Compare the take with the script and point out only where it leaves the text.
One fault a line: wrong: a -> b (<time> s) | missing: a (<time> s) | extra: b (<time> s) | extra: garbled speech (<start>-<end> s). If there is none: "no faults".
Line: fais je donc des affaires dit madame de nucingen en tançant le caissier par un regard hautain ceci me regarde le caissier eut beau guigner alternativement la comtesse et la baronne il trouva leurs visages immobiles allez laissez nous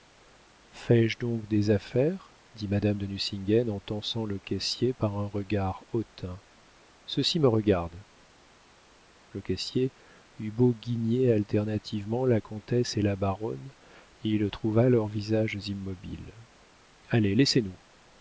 no faults